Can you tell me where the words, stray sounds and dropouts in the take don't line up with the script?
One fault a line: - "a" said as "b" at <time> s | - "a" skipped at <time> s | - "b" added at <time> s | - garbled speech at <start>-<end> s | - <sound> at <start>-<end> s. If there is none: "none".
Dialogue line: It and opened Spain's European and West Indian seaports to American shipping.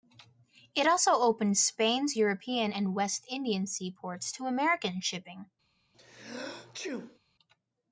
- "and" said as "also" at 0.9 s
- sneeze at 5.9-7.2 s